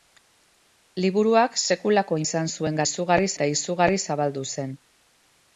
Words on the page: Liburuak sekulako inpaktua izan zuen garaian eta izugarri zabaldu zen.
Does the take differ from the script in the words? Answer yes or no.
yes